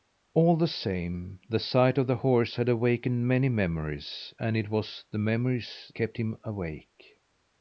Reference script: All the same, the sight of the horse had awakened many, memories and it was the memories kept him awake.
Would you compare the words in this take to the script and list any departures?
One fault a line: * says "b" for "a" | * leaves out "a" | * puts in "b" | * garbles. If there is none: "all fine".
all fine